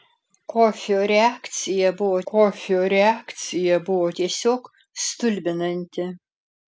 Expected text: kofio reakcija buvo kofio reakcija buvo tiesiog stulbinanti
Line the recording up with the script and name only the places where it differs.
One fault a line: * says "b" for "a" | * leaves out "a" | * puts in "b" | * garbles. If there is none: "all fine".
all fine